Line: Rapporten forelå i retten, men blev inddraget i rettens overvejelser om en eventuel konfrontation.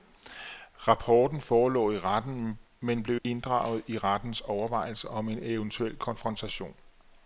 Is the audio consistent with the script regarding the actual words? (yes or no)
yes